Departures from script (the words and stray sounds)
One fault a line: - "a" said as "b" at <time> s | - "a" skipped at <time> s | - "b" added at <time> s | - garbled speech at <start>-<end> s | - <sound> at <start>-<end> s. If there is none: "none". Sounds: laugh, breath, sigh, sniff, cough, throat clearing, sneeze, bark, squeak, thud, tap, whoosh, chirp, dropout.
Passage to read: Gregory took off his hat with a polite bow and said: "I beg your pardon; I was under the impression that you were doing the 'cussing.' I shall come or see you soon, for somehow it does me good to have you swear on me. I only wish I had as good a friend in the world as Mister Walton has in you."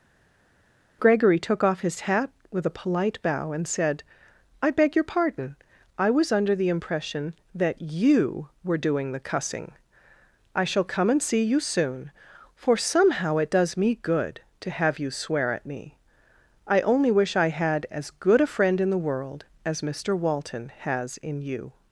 - "or" said as "and" at 11.1 s
- "on" said as "at" at 15.5 s